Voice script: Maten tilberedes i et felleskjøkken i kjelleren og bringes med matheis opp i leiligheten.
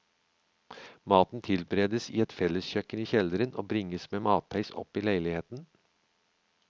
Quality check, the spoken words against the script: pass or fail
pass